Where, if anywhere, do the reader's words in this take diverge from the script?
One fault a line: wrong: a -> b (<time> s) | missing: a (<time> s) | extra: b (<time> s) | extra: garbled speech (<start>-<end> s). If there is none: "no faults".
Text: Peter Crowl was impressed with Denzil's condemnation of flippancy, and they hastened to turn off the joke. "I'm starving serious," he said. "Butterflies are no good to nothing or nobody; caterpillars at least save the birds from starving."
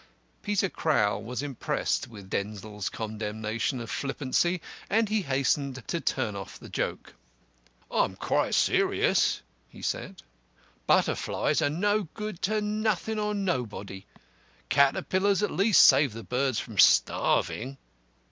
wrong: they -> he (5.1 s)
wrong: starving -> quite (8.1 s)